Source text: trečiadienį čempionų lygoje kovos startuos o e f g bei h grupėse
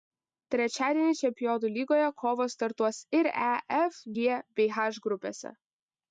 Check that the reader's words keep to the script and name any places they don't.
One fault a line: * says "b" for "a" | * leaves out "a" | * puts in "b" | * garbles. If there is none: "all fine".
* says "ir" for "o"